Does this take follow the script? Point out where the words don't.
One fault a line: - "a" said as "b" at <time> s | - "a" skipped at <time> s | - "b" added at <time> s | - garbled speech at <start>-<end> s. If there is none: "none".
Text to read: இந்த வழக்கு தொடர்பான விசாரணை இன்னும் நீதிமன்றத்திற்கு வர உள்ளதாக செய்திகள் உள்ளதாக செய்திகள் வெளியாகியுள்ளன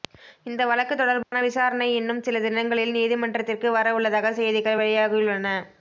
- "சில தினங்களில்" added at 2.2 s
- "உள்ளதாக செய்திகள்" skipped at 4.8 s